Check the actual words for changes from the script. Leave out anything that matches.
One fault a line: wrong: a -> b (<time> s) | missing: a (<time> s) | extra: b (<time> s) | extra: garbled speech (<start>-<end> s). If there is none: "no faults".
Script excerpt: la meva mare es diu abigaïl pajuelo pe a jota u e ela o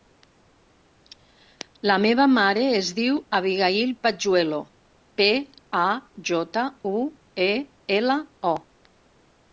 no faults